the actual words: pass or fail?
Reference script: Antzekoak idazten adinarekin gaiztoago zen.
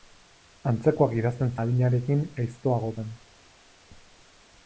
pass